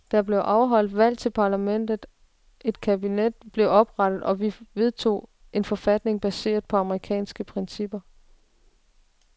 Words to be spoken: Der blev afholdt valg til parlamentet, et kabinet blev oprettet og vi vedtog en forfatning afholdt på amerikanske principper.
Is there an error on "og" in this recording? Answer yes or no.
no